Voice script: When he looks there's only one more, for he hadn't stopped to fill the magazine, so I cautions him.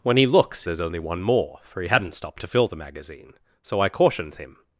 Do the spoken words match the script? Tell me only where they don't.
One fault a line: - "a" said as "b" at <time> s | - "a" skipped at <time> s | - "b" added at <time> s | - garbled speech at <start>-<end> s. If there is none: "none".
none